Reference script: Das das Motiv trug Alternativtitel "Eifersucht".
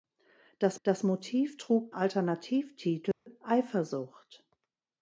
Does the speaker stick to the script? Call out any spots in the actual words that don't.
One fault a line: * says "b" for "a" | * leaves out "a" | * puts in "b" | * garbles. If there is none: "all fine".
all fine